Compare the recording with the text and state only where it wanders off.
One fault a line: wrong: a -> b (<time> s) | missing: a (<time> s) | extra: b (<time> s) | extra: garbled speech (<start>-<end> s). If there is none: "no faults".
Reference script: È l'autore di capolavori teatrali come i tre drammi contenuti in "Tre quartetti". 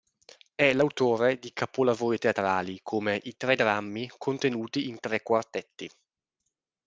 no faults